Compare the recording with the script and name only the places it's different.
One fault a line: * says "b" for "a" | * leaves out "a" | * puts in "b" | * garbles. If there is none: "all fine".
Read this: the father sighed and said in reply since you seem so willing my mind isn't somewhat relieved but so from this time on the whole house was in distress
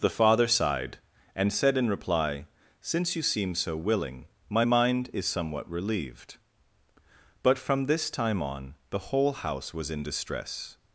* says "is" for "isn't"
* leaves out "so"